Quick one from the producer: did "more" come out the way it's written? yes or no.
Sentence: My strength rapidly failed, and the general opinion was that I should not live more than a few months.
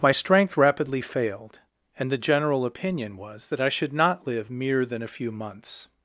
no